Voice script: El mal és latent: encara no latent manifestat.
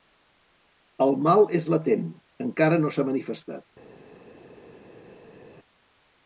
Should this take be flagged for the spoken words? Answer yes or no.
yes